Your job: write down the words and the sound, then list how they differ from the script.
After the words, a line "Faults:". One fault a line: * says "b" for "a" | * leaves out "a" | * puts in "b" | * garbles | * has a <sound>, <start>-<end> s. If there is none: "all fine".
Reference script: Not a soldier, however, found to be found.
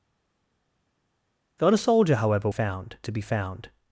Not a soldier, however, found to be found.
Faults:
all fine